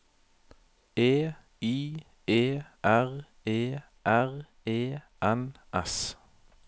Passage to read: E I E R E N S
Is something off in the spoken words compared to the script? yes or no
yes